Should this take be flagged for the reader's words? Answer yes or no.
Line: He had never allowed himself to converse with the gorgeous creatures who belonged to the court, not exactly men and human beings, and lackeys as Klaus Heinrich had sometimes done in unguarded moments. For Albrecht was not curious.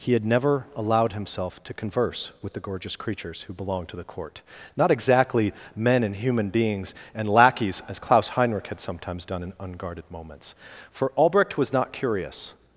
no